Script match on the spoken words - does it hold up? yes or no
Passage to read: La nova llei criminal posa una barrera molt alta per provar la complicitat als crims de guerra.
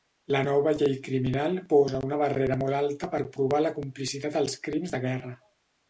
yes